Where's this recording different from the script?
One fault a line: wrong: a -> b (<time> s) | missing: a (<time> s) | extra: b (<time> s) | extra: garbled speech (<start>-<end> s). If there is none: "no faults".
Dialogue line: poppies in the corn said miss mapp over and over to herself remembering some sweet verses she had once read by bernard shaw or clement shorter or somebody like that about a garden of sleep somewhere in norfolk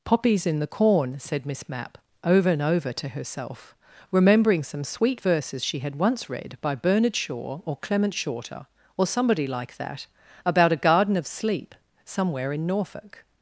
no faults